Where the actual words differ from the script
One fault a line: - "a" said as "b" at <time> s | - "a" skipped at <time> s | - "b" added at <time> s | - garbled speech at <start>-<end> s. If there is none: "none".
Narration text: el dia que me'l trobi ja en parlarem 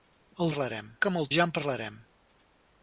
- "dia" said as "parlarem" at 0.5 s
- "trobi" skipped at 1.3 s